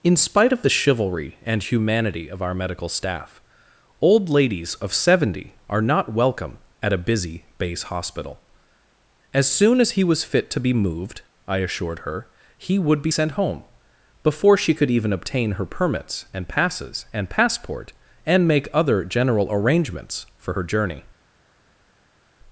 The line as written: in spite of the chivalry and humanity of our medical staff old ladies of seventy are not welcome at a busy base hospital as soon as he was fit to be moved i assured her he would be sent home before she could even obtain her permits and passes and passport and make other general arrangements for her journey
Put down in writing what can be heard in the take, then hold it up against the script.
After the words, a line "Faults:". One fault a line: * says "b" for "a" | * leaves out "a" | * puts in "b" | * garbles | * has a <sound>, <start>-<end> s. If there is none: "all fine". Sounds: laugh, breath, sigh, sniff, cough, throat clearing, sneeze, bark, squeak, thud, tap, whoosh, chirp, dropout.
in spite of the chivalry and humanity of our medical staff old ladies of seventy are not welcome at a busy base hospital as soon as he was fit to be moved i assured her he would be sent home before she could even obtain her permits and passes and passport and make other general arrangements for her journey
Faults:
all fine